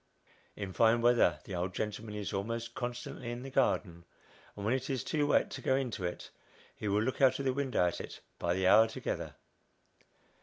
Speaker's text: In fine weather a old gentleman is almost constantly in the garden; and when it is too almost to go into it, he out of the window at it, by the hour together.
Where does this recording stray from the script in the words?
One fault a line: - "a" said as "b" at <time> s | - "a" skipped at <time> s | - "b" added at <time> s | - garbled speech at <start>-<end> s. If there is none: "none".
- "a" said as "the" at 1.4 s
- "almost" said as "wet" at 5.3 s
- "will look" added at 6.9 s